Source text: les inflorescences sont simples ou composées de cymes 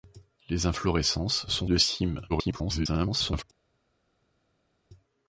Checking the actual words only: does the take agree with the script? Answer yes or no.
no